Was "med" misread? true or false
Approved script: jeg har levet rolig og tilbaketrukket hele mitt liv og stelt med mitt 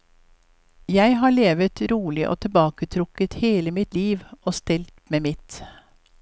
false